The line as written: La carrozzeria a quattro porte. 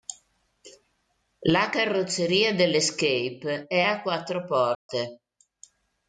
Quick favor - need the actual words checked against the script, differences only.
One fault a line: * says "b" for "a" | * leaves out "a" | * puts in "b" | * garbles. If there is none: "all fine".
* puts in "dell'Escape è"